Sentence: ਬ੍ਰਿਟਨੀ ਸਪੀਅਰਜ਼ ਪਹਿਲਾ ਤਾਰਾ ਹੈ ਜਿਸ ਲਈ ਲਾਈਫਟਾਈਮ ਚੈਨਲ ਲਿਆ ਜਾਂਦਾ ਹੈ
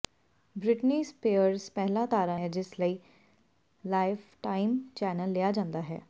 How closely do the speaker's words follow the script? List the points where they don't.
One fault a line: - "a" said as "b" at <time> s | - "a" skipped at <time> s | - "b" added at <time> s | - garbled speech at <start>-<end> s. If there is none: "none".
none